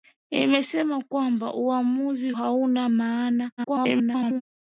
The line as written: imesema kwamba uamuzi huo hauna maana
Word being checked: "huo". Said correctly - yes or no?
no